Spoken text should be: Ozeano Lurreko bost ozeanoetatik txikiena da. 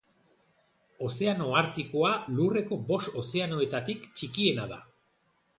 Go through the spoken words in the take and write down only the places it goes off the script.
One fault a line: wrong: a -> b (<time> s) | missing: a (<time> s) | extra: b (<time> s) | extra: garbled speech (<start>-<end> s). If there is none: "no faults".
extra: Artikoa (1.6 s)